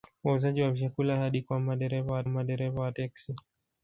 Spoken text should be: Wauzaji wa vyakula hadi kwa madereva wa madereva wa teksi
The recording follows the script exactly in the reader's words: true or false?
true